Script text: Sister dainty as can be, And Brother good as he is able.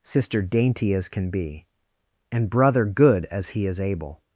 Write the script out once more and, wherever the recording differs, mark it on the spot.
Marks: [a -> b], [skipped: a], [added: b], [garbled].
Sister dainty as can be, And Brother good as he is able.